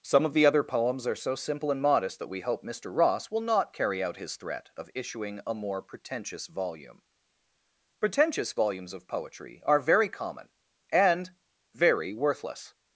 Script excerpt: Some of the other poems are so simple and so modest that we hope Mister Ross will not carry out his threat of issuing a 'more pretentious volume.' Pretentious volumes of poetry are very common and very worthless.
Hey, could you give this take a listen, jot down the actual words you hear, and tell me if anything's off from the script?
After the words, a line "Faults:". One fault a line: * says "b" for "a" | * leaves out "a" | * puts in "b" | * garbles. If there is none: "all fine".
Some of the other poems are so simple and modest that we hope Mister Ross will not carry out his threat of issuing a 'more pretentious volume.' Pretentious volumes of poetry are very common and very worthless.
Faults:
* leaves out "so"